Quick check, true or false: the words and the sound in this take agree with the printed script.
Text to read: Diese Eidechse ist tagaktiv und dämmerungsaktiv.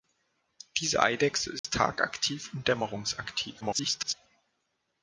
false